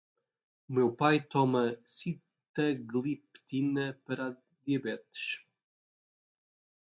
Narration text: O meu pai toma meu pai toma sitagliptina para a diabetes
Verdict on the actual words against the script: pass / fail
fail